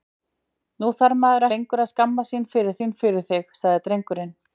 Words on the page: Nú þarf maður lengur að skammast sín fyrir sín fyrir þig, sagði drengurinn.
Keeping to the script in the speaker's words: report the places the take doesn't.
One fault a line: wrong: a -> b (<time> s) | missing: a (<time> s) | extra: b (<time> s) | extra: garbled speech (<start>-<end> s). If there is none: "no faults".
no faults